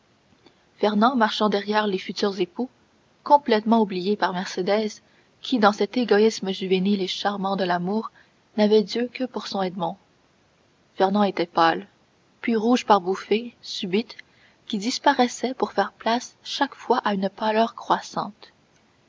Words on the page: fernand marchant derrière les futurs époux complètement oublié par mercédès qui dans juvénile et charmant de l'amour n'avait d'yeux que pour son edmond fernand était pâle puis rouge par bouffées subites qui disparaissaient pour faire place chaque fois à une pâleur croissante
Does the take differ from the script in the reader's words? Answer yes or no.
yes